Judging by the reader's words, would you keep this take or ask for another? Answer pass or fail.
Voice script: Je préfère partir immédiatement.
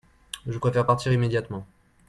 pass